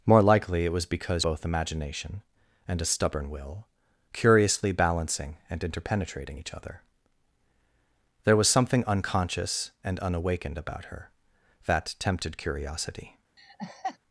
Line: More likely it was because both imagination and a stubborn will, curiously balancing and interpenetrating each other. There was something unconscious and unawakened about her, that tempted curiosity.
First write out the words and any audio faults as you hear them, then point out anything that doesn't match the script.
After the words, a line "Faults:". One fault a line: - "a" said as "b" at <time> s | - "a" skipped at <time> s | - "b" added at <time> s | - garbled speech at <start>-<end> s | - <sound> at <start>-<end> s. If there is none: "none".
More likely it was because both imagination and a stubborn will, curiously balancing and interpenetrating each other. There was something unconscious and unawakened about her, that tempted curiosity.
Faults:
- laugh at 13.4-14.0 s